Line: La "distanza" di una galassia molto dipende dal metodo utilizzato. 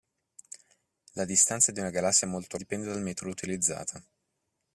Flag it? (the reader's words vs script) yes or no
no